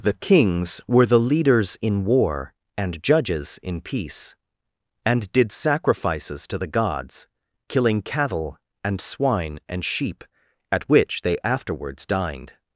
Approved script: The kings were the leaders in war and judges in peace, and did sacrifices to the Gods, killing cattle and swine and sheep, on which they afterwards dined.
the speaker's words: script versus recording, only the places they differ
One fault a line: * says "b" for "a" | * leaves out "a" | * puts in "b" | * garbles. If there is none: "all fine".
* says "at" for "on"